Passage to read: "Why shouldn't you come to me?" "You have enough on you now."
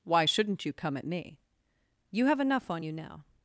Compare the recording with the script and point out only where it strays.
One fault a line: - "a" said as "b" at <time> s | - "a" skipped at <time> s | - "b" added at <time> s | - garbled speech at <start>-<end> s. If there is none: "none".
- "to" said as "at" at 1.0 s